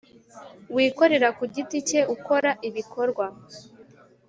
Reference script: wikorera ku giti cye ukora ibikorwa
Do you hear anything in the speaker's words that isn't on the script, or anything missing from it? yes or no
no